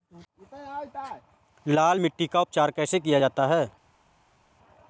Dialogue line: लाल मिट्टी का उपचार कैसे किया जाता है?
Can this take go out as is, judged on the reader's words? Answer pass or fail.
pass